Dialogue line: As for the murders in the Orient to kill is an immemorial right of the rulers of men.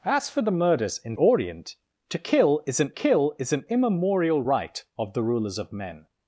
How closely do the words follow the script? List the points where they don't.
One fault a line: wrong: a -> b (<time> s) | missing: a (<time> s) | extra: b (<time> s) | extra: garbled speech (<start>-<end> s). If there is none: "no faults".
missing: the (1.1 s)
extra: kill is an (2.9 s)